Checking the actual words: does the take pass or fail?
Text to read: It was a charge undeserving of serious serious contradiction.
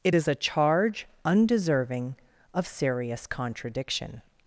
fail